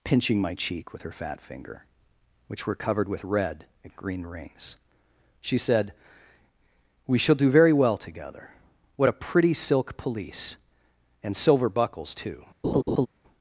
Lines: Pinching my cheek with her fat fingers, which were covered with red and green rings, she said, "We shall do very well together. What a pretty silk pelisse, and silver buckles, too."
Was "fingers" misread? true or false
true